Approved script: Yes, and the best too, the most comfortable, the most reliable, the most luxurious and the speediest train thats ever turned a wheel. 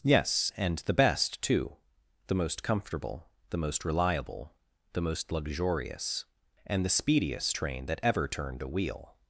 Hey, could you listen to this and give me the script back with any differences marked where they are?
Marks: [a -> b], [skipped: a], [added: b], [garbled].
Yes, and the best too, the most comfortable, the most reliable, the most luxurious and the speediest train [thats -> that] ever turned a wheel.